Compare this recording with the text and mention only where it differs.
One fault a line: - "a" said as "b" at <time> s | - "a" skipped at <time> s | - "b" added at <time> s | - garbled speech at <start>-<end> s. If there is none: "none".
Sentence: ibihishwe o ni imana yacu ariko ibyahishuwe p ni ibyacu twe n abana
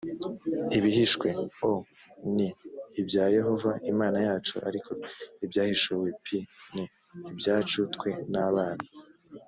- "ibya yehova" added at 3.0 s